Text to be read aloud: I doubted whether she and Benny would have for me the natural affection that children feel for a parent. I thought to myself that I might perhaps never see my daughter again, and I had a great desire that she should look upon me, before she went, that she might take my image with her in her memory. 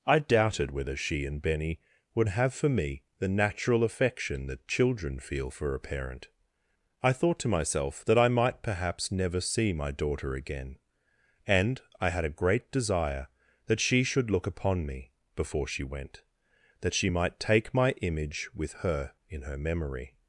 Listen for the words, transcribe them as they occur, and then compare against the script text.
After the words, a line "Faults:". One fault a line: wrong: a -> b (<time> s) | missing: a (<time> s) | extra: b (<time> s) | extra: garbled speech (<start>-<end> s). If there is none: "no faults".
I doubted whether she and Benny would have for me the natural affection that children feel for a parent. I thought to myself that I might perhaps never see my daughter again, and I had a great desire that she should look upon me, before she went, that she might take my image with her in her memory.
Faults:
no faults